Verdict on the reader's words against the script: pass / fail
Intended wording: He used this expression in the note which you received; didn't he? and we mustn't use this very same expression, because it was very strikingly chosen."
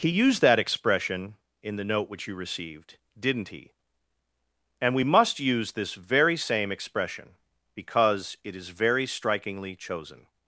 fail